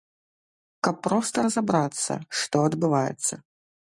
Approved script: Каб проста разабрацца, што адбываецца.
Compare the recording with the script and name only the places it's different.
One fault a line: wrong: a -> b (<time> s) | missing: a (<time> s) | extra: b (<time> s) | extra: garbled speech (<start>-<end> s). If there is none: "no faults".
no faults